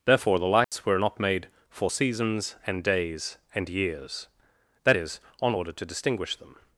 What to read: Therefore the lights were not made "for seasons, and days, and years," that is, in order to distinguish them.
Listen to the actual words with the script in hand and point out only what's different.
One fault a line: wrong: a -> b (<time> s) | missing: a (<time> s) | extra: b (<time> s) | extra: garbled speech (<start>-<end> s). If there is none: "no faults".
wrong: in -> on (5.4 s)